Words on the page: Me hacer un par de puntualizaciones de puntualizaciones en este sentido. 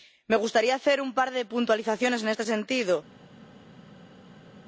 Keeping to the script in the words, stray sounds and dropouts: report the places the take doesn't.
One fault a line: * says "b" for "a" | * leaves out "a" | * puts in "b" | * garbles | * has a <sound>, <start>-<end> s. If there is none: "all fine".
* puts in "gustaría"
* leaves out "de puntualizaciones"